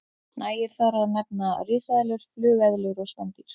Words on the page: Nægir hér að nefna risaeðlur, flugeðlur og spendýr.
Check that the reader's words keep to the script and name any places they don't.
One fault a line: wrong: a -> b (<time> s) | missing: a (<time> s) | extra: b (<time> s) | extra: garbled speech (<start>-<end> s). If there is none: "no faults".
wrong: hér -> þar (0.8 s)